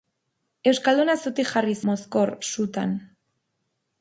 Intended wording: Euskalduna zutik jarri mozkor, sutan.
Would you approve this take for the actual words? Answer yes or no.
yes